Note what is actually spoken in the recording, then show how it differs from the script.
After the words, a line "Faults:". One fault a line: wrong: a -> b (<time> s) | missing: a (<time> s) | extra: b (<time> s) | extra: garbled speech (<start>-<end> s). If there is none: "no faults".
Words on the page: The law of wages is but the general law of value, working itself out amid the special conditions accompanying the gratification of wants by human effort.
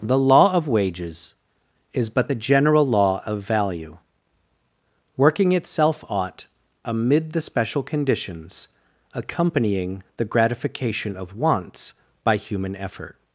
The law of wages is but the general law of value, working itself ought amid the special conditions accompanying the gratification of wants by human effort.
Faults:
wrong: out -> ought (6.1 s)